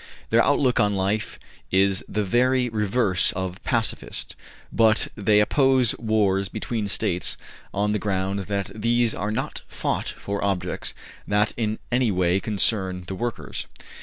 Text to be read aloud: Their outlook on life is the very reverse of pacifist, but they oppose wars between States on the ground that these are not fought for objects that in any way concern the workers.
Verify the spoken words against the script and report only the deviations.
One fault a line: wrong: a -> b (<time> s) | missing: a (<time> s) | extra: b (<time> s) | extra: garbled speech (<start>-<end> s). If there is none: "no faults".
no faults